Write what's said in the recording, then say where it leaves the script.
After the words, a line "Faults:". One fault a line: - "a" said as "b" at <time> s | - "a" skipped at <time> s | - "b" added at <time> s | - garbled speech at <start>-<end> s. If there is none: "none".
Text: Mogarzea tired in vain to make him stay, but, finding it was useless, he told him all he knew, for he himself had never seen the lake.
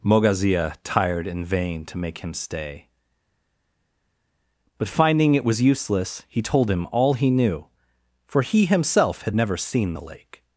Mogarzea tired in vain to make him stay, but, finding it was useless, he told him all he knew, for he himself had never seen the lake.
Faults:
none